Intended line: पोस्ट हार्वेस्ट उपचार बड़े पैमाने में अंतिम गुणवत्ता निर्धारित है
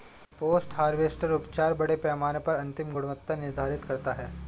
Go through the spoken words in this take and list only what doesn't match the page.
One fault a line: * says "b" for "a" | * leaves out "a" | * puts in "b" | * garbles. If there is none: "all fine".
* says "पर" for "में"
* puts in "करता"